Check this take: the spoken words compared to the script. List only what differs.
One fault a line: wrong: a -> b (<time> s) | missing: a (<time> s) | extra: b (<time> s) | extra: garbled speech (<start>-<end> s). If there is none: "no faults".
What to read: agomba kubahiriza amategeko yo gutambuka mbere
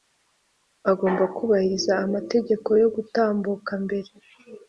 no faults